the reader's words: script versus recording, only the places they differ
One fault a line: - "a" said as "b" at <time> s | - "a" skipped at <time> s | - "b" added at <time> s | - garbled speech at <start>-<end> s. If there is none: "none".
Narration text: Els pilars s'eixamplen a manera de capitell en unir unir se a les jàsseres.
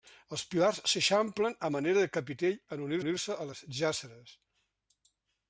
none